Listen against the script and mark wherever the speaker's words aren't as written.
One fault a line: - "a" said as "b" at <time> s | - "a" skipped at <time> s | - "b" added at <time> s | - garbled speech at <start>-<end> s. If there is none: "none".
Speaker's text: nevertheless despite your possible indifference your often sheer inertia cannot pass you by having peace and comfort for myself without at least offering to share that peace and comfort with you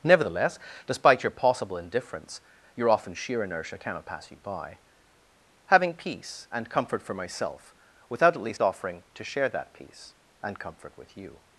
none